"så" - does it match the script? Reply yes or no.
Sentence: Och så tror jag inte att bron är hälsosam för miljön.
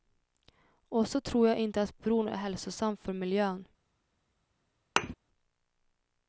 yes